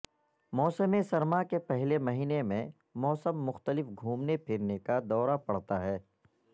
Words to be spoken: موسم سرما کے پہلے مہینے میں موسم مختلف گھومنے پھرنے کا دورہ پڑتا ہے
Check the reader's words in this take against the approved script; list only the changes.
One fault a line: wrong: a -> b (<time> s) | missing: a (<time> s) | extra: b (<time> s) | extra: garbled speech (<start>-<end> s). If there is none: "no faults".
no faults